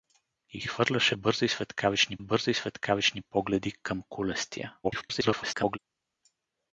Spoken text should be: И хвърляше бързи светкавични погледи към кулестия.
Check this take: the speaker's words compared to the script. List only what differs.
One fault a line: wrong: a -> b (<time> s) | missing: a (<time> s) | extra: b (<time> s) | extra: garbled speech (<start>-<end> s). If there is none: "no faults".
extra: бързи светкавични (2.2 s)
extra: garbled speech (4.8-5.8 s)